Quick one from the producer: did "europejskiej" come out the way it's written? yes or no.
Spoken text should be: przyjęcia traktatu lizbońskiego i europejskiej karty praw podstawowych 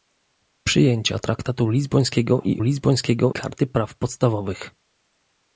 no